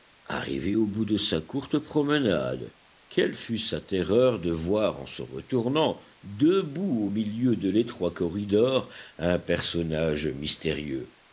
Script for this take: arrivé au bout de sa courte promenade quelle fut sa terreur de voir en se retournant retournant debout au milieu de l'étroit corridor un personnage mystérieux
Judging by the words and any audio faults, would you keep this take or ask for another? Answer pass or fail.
fail